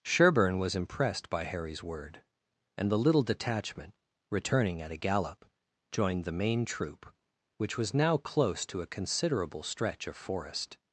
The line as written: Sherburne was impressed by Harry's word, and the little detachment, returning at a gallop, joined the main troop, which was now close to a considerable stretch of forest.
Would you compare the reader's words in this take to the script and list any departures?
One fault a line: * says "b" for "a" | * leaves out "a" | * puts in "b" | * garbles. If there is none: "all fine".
all fine